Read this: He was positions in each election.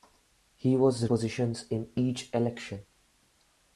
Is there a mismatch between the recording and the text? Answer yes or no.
no